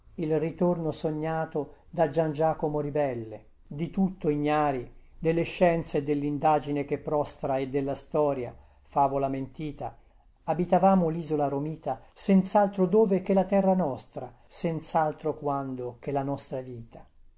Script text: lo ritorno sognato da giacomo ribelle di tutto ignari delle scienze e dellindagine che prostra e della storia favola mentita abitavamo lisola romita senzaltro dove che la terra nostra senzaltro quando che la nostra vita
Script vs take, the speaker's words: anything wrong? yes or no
yes